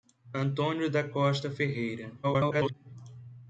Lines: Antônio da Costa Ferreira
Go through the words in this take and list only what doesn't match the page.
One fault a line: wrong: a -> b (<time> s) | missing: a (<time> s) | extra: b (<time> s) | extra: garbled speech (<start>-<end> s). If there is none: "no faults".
extra: garbled speech (2.2-2.7 s)